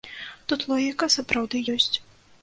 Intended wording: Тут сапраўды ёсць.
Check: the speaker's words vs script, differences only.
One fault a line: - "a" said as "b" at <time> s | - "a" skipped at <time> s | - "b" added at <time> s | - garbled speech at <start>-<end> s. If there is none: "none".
- "логіка" added at 0.7 s